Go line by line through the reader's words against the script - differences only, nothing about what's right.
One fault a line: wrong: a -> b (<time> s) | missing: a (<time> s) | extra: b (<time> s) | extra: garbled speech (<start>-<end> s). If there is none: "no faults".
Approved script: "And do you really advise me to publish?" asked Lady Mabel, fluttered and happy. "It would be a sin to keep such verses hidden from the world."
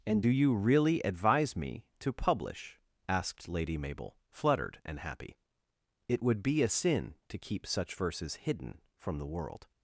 no faults